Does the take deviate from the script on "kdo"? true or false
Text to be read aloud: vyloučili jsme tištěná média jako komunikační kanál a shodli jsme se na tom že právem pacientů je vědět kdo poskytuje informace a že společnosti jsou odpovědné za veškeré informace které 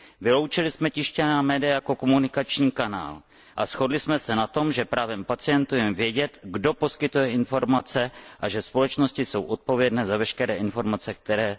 false